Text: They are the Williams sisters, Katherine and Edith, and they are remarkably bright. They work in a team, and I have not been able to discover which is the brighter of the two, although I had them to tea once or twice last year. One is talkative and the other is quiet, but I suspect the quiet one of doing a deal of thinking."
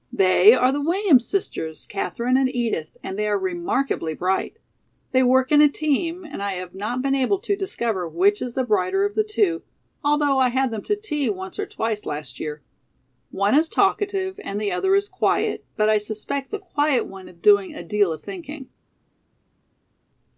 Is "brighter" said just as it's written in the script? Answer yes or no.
yes